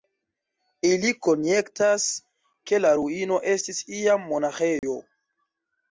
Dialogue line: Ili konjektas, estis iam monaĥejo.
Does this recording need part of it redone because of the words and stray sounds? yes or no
yes